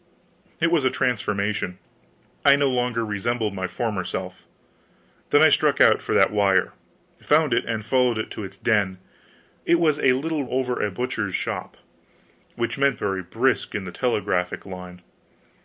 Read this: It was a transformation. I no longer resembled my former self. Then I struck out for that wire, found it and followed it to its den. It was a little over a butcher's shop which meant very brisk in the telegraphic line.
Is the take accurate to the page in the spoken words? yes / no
yes